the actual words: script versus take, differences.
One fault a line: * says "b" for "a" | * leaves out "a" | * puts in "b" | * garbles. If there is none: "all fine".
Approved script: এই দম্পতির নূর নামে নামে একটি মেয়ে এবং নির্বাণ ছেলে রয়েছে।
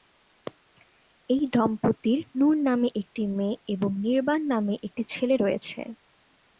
* leaves out "নামে"
* puts in "নামে একটি"